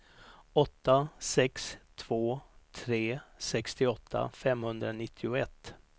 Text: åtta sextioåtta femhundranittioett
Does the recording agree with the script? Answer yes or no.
no